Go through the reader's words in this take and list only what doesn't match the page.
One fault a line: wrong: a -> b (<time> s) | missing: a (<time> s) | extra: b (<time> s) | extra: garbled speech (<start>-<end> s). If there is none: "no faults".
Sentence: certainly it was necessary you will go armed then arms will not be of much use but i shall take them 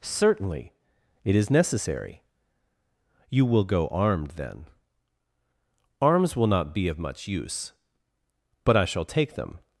wrong: was -> is (1.4 s)